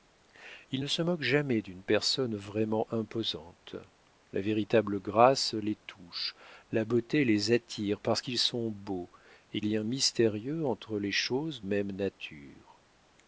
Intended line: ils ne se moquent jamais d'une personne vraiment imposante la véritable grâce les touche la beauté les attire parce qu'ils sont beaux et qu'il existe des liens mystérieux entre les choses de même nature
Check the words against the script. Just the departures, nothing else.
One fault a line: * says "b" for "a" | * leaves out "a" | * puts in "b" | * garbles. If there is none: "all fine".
* leaves out "qu'il existe des"
* leaves out "de"